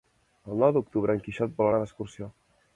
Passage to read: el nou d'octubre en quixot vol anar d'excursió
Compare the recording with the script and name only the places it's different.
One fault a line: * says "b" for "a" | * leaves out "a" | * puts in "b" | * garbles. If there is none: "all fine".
all fine